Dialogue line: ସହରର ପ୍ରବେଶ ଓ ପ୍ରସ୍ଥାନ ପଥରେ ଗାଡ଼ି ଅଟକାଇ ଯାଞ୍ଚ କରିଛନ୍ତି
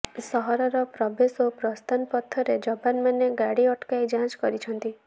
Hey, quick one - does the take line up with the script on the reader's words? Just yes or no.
no